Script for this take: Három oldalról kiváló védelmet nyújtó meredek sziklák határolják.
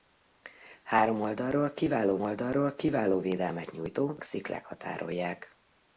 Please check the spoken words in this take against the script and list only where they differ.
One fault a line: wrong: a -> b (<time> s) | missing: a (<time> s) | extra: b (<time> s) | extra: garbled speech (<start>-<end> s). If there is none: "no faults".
extra: oldalról kiváló (2.2 s)
missing: meredek (4.2 s)